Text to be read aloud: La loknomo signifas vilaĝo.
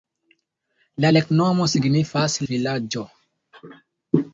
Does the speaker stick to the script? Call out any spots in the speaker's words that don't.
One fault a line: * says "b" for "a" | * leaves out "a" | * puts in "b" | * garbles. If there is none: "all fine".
all fine